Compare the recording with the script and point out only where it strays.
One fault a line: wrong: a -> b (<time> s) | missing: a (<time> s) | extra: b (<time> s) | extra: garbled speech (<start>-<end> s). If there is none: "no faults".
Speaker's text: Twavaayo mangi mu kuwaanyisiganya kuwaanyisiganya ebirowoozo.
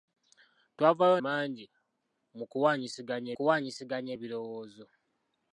no faults